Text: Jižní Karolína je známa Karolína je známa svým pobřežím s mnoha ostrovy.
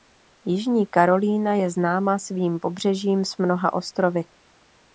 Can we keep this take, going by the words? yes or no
no